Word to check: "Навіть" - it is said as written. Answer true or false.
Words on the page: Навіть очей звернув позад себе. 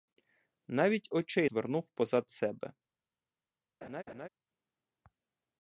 true